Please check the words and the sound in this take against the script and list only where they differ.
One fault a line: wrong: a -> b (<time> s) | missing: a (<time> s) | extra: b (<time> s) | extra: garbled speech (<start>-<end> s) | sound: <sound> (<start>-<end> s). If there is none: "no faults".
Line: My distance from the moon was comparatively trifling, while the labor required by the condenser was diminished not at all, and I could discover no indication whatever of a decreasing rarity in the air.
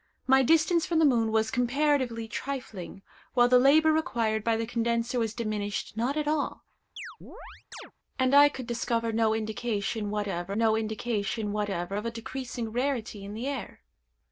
sound: chirp (7.0-7.9 s)
extra: no indication whatever (10.5 s)